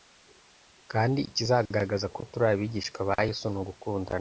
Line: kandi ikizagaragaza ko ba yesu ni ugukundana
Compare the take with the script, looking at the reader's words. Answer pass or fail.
fail